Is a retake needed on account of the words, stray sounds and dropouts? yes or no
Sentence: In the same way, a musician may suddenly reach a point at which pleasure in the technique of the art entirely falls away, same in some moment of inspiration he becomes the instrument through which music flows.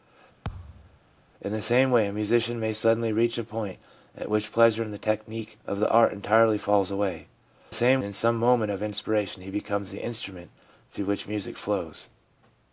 yes